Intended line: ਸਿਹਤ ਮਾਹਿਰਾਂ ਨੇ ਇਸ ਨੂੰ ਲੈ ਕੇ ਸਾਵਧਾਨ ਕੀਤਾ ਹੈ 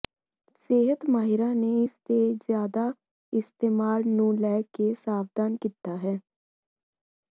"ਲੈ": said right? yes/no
yes